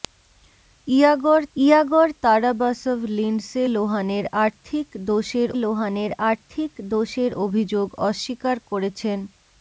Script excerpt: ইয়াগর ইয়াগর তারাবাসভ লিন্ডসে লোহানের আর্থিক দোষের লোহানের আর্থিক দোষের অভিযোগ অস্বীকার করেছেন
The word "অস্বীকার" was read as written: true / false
true